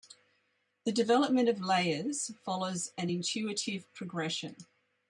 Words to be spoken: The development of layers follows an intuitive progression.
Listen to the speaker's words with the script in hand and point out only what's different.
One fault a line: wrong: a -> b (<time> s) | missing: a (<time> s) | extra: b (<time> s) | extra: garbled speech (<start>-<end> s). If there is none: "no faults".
no faults